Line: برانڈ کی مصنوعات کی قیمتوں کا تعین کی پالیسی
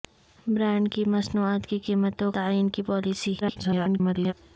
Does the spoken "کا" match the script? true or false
false